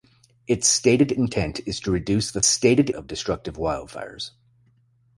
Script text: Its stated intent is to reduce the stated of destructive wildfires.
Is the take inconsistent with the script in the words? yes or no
no